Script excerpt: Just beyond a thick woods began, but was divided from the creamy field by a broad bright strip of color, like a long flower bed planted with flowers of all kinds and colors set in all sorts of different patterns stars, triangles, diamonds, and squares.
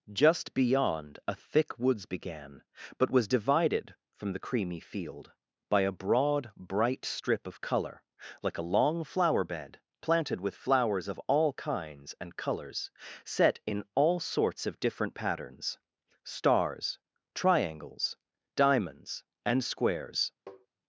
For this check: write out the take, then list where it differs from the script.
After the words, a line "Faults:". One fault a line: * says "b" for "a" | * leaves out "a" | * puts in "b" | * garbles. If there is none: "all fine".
Just beyond a thick woods began, but was divided from the creamy field by a broad bright strip of color, like a long flower bed planted with flowers of all kinds and colors set in all sorts of different patterns stars, triangles, diamonds, and squares.
Faults:
all fine